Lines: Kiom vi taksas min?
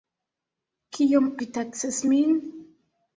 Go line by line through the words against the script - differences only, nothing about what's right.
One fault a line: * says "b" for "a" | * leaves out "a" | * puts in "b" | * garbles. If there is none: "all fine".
all fine